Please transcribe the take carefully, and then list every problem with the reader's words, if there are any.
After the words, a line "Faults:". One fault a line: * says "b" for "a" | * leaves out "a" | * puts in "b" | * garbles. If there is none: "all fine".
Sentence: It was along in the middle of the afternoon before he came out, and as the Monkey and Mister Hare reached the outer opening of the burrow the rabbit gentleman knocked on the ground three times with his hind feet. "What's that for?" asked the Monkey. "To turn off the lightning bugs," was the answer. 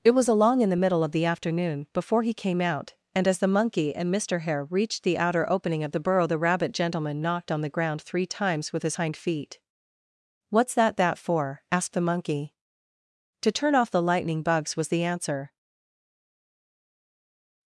It was along in the middle of the afternoon before he came out, and as the Monkey and Mister Hare reached the outer opening of the burrow the rabbit gentleman knocked on the ground three times with his hind feet. "What's that that for?" asked the Monkey. "To turn off the lightning bugs," was the answer.
Faults:
* puts in "that"